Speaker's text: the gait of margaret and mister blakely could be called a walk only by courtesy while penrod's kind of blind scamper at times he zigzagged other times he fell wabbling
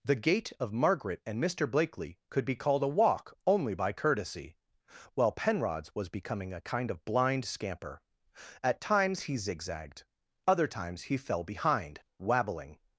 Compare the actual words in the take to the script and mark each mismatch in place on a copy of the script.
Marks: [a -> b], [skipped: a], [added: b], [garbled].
the gait of margaret and mister blakely could be called a walk only by courtesy while penrod's [added: was becoming a] kind of blind scamper at times he zigzagged other times he fell [added: behind] wabbling